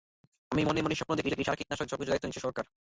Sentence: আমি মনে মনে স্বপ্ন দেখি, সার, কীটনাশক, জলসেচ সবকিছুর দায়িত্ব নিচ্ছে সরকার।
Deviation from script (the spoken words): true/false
true